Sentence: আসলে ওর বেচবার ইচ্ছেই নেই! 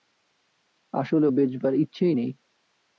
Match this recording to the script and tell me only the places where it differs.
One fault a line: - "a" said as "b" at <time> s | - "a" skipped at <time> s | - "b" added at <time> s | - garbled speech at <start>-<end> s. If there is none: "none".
- "ওর" skipped at 1.3 s